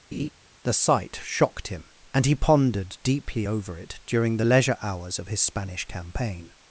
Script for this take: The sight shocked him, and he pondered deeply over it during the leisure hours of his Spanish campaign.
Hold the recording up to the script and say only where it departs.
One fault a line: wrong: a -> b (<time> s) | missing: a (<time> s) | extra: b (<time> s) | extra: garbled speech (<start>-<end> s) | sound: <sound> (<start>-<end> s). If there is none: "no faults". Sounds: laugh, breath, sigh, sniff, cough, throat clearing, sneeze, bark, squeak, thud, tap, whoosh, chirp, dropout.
sound: laugh (0.1-0.3 s)